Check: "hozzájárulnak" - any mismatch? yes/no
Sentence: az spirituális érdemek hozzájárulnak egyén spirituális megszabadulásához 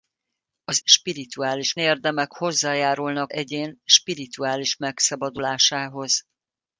no